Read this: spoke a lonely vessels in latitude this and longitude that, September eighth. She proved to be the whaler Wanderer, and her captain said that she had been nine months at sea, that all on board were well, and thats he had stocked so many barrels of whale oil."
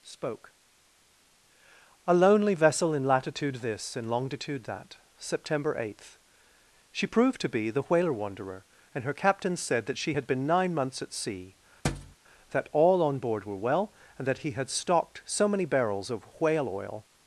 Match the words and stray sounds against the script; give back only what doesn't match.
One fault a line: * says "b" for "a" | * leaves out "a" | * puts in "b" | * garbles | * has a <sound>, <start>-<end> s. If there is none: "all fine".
* says "vessel" for "vessels"
* has a thud, 11.8-12.2 s
* says "that" for "thats"